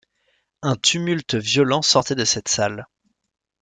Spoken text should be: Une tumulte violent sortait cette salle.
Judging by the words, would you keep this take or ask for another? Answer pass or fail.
fail